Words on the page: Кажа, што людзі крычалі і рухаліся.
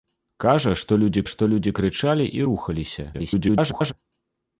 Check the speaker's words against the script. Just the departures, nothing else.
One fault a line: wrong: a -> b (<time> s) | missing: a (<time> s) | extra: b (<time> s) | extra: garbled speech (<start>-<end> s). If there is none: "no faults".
extra: што людзі (1.3 s)
extra: garbled speech (3.1-3.9 s)